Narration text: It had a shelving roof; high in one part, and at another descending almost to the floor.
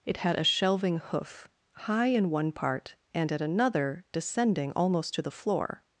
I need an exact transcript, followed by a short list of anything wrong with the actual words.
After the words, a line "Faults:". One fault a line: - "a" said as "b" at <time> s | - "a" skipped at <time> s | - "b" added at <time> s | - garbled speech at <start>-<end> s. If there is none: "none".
It had a shelving hoof; high in one part, and at another descending almost to the floor.
Faults:
- "roof" said as "hoof" at 1.0 s